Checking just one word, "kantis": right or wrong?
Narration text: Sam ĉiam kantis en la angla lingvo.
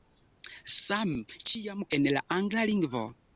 wrong